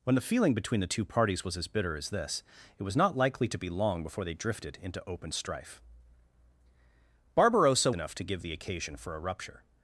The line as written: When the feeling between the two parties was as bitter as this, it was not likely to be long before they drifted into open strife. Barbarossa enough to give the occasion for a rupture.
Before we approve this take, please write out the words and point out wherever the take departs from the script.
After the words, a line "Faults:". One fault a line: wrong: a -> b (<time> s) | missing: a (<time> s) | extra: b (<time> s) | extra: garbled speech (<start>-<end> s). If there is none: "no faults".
When the feeling between the two parties was as bitter as this, it was not likely to be long before they drifted into open strife. Barbarossa enough to give the occasion for a rupture.
Faults:
no faults